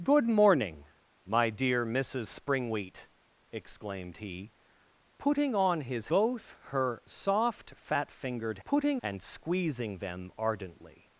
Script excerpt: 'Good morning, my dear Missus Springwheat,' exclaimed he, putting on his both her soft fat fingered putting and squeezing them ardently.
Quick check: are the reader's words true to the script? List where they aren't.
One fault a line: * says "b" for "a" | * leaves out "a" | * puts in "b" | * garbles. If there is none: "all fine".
all fine